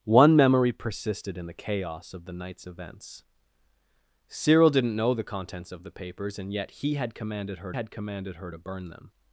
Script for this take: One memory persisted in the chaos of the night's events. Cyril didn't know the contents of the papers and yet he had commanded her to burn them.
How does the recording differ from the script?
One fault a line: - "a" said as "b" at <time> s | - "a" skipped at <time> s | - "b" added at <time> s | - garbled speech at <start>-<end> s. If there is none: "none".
- "had commanded her" added at 7.7 s